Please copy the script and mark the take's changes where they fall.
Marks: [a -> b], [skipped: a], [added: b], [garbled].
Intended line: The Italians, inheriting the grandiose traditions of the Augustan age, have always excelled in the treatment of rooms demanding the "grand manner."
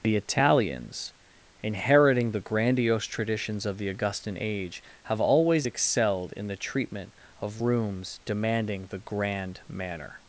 The Italians, inheriting the grandiose traditions of the Augustan age, have always excelled in the treatment of rooms demanding the "grand manner."